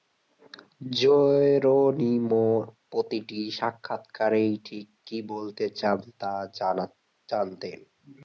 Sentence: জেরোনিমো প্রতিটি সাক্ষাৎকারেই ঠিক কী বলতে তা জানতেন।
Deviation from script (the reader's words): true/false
true